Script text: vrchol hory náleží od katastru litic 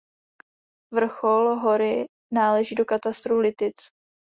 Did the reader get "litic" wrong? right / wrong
right